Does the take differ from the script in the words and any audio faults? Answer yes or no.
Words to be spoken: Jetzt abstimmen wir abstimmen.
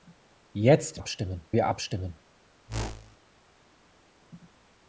yes